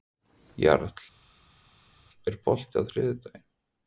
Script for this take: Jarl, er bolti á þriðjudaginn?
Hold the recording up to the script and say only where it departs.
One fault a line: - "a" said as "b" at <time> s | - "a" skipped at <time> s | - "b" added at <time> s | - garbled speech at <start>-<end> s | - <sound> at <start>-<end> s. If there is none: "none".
none